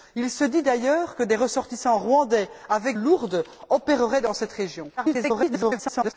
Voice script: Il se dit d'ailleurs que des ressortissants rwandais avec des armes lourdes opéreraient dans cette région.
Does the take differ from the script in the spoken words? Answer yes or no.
yes